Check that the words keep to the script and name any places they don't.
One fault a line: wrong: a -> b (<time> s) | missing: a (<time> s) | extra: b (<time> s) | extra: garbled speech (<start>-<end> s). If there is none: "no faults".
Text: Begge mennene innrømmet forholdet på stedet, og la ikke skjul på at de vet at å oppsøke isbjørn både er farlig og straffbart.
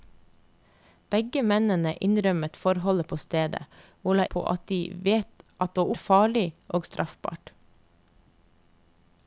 missing: ikke skjul (4.2 s)
missing: oppsøke isbjørn både (5.9 s)